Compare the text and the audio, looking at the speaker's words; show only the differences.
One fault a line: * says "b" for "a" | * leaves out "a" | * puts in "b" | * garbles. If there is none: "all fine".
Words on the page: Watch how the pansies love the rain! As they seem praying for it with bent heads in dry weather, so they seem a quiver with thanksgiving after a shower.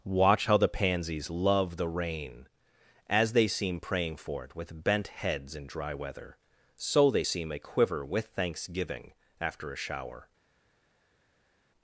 all fine